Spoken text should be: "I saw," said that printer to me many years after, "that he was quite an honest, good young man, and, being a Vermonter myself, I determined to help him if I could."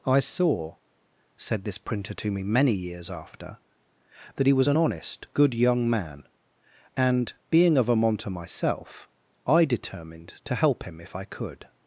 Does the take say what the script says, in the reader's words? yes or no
no